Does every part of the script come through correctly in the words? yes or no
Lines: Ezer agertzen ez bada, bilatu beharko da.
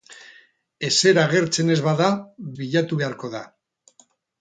yes